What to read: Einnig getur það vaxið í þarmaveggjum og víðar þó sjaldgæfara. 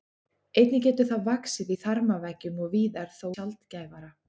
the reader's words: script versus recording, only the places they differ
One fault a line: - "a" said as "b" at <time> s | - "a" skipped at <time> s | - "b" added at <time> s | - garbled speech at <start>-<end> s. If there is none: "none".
none